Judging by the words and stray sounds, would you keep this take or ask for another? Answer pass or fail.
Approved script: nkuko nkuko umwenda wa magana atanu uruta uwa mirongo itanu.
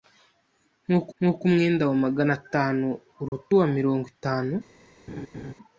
fail